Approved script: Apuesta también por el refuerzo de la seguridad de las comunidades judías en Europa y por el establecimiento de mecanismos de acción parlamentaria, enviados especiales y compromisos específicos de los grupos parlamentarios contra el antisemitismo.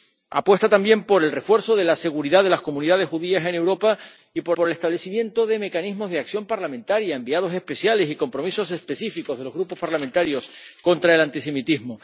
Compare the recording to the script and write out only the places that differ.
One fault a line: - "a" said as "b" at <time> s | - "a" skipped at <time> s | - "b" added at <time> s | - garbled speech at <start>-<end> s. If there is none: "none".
- "por" added at 4.5 s